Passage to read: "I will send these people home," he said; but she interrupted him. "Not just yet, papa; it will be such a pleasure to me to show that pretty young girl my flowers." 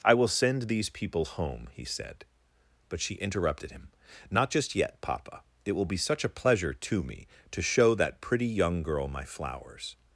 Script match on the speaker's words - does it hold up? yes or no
yes